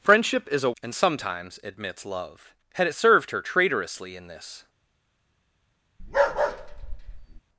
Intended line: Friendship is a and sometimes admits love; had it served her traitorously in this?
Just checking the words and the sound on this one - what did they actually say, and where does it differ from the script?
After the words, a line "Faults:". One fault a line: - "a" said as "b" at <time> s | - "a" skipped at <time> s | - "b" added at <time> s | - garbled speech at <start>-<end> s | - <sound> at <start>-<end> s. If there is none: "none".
Friendship is a and sometimes admits love; had it served her traitorously in this?
Faults:
- bark at 6.0-7.4 s